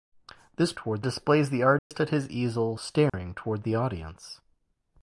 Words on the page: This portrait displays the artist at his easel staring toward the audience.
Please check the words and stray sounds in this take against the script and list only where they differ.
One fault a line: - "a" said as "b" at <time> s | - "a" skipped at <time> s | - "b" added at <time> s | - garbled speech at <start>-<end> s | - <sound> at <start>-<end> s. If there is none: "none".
- "portrait" said as "toward" at 0.7 s
- dropout at 1.8-1.9 s
- dropout at 3.1-3.1 s